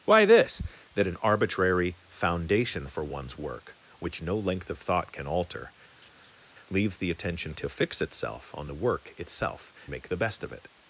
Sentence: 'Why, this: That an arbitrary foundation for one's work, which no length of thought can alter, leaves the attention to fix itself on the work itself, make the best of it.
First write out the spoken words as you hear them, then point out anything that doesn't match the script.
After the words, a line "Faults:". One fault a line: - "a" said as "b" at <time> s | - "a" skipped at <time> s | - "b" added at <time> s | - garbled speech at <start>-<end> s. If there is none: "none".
'Why, this: That an arbitrary foundation for one's work, which no length of thought can alter, leaves the attention to fix itself on the work itself, make the best of it.
Faults:
none